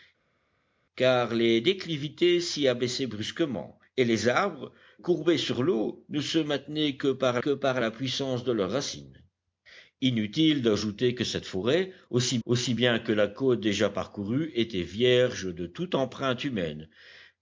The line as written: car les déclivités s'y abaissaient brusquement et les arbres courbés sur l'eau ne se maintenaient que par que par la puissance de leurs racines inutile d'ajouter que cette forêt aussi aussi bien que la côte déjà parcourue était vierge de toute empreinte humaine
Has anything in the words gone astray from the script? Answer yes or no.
no